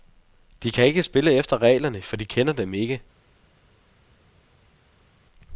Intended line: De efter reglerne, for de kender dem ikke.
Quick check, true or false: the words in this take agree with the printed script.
false